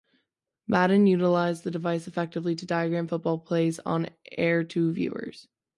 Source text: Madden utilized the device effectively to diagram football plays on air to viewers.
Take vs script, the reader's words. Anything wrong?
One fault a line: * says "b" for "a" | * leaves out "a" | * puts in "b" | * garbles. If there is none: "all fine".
all fine